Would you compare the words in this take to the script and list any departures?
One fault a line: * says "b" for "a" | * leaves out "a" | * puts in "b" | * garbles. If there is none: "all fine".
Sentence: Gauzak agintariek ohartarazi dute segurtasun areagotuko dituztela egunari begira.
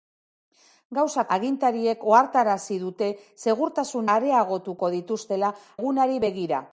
all fine